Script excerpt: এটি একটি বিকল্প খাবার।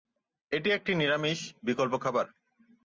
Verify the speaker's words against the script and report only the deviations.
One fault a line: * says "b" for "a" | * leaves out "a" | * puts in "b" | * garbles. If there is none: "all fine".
* puts in "নিরামিষ"